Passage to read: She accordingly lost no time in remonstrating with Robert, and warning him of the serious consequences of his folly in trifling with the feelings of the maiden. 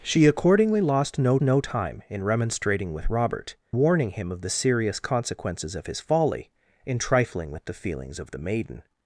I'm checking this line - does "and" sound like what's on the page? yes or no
no